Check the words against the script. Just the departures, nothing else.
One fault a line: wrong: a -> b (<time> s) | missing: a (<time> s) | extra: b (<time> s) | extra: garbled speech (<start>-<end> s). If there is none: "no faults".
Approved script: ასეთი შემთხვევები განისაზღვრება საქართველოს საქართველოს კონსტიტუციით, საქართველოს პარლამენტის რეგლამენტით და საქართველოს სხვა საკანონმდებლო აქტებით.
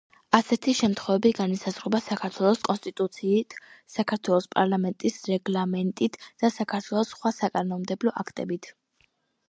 missing: საქართველოს (2.6 s)